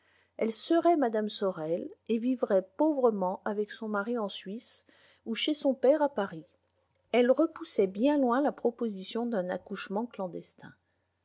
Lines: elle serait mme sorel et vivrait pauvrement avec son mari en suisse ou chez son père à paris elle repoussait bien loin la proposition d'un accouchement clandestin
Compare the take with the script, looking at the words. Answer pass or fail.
pass